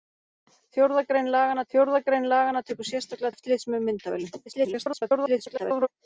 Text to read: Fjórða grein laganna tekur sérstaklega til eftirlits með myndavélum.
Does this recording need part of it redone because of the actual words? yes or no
yes